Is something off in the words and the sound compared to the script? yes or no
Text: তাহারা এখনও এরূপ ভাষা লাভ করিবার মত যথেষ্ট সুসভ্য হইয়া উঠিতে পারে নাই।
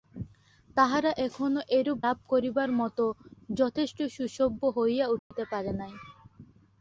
yes